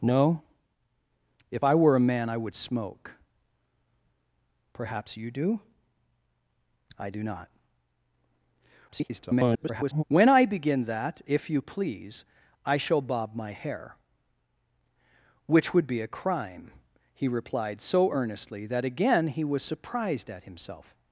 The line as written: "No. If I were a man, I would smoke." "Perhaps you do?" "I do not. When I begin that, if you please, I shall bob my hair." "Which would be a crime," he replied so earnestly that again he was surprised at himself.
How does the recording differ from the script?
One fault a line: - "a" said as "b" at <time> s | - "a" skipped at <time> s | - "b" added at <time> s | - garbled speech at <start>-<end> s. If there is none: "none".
- garbled speech at 8.9-10.0 s